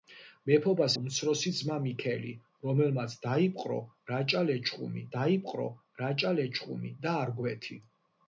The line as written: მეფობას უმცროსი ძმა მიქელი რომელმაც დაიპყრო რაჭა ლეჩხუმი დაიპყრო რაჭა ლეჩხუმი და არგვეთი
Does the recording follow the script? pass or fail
pass